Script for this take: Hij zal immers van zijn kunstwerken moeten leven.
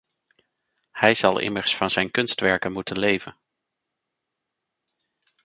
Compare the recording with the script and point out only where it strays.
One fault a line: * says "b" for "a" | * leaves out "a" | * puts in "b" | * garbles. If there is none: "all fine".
all fine